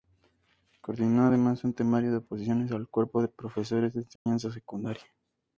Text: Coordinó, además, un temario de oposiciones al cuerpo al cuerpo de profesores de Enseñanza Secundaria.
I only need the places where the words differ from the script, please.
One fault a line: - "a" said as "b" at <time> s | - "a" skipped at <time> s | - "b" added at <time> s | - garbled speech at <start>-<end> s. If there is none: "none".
- "al cuerpo" skipped at 3.2 s